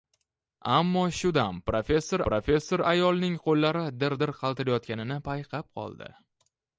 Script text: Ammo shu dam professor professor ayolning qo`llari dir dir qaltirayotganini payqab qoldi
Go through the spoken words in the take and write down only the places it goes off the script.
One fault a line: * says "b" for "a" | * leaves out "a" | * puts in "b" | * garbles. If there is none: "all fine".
all fine